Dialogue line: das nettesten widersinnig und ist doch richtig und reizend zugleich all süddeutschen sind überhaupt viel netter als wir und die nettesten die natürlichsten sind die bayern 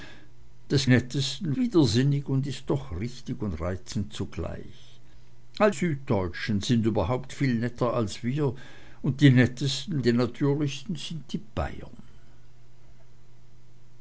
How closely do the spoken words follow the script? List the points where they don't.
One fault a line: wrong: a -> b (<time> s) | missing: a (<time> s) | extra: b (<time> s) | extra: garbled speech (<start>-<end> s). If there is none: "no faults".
no faults